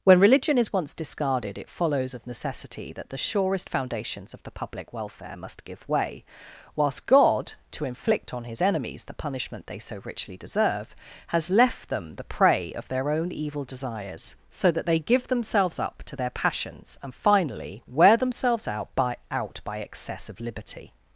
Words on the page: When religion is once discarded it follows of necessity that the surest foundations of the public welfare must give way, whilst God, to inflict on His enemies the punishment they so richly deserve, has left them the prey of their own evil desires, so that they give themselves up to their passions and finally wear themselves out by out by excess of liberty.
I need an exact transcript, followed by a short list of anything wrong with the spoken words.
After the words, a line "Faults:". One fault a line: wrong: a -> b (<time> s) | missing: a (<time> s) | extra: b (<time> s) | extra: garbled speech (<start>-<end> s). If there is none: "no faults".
When religion is once discarded it follows of necessity that the surest foundations of the public welfare must give way, whilst God, to inflict on His enemies the punishment they so richly deserve, has left them the prey of their own evil desires, so that they give themselves up to their passions and finally wear themselves out by out by excess of liberty.
Faults:
no faults